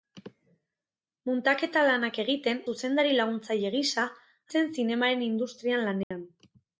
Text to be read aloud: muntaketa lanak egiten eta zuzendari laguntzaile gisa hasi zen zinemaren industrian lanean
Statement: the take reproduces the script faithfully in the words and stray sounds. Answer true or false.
false